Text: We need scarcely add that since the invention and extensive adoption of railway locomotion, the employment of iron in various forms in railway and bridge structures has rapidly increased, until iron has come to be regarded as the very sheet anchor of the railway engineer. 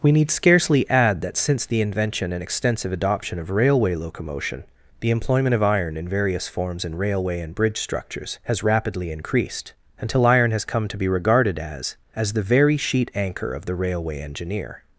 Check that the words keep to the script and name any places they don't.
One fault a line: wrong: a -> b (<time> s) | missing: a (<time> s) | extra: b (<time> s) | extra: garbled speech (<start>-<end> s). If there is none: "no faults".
extra: as (12.2 s)